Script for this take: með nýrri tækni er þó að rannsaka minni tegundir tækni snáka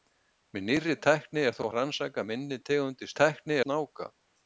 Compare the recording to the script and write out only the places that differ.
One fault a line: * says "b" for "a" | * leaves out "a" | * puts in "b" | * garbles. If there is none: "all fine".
all fine